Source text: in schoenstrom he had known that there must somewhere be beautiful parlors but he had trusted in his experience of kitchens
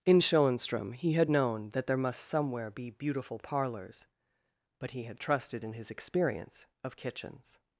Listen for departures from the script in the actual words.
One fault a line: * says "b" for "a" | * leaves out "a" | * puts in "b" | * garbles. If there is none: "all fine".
all fine